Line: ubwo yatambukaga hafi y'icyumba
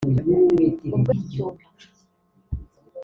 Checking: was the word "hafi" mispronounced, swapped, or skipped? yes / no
yes